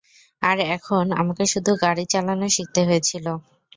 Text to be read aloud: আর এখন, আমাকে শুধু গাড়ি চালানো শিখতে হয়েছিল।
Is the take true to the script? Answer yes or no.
yes